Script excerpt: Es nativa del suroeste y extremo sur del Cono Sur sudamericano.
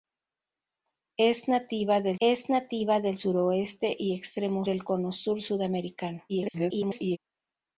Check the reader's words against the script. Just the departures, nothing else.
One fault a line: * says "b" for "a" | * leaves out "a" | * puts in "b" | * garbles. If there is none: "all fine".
* puts in "es nativa del"
* leaves out "sur"
* garbles